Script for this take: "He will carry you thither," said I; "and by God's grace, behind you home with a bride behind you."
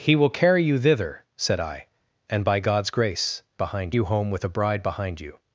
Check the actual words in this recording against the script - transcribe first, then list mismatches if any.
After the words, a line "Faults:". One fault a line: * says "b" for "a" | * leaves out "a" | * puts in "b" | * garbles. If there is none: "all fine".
"He will carry you thither," said I; "and by God's grace, behind you home with a bride behind you."
Faults:
all fine